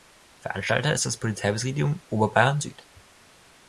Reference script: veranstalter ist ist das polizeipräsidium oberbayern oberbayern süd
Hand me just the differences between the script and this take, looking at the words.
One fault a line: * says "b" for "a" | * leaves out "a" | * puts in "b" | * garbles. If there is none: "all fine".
* leaves out "ist"
* leaves out "oberbayern"